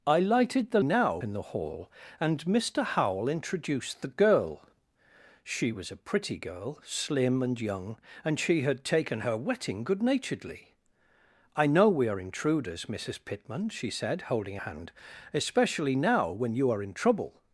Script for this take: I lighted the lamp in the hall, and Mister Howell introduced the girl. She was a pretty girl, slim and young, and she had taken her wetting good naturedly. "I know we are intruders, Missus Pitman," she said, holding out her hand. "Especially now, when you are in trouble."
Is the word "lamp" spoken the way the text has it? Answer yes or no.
no